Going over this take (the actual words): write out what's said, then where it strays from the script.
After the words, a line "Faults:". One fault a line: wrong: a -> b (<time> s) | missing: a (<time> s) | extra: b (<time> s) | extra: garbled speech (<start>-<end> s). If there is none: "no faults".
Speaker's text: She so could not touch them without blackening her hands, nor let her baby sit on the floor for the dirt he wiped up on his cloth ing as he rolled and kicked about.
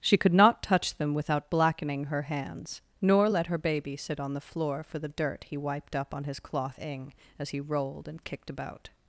She could not touch them without blackening her hands, nor let her baby sit on the floor for the dirt he wiped up on his cloth ing as he rolled and kicked about.
Faults:
missing: so (0.2 s)